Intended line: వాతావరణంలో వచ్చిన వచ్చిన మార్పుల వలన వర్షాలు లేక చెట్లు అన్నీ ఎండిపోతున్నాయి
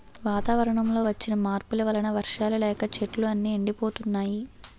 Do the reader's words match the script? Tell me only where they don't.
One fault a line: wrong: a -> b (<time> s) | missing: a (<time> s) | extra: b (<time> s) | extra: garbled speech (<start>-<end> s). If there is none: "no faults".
missing: వచ్చిన (1.3 s)